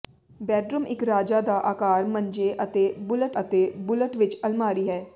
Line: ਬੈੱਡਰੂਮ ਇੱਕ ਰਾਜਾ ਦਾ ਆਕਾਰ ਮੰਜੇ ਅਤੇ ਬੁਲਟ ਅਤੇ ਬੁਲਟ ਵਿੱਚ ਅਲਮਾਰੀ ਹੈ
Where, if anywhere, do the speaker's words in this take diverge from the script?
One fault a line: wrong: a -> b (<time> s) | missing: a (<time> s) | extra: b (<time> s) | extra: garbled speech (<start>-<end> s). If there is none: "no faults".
no faults